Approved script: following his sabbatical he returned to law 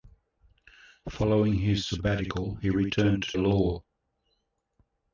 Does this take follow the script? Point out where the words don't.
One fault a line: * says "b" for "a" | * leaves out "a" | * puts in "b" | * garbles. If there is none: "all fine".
all fine